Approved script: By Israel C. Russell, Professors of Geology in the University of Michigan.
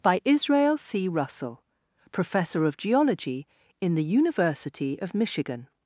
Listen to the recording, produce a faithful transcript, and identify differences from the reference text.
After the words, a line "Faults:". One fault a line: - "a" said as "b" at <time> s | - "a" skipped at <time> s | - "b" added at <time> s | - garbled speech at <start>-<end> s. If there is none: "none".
By Israel C. Russell, Professor of Geology in the University of Michigan.
Faults:
- "Professors" said as "Professor" at 2.1 s